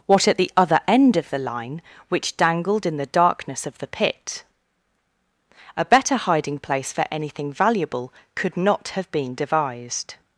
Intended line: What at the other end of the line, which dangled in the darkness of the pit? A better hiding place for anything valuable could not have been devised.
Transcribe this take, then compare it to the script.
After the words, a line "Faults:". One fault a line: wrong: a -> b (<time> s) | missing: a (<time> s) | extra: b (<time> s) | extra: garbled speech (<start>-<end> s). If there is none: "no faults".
What at the other end of the line, which dangled in the darkness of the pit? A better hiding place for anything valuable could not have been devised.
Faults:
no faults